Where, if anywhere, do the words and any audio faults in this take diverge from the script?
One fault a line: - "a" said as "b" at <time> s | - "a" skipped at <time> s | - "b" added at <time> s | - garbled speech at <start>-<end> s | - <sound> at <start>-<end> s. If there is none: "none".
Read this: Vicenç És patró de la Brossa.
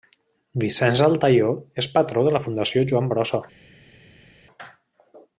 - "Altaió" added at 1.1 s
- "Fundació Joan" added at 2.4 s